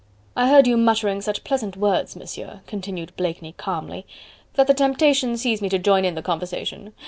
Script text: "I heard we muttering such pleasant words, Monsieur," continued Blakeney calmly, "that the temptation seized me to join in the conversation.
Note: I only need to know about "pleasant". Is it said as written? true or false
true